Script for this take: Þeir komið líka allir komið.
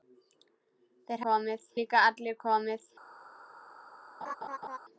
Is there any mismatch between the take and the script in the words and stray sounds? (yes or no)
yes